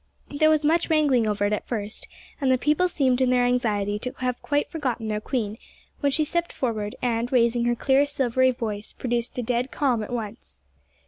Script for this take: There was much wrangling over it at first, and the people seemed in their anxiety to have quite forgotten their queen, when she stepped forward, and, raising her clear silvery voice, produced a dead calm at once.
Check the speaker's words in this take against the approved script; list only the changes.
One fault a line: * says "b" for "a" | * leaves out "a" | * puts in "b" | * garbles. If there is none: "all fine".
all fine